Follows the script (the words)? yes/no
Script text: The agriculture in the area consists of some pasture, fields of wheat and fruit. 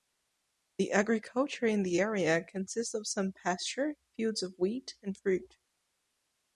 yes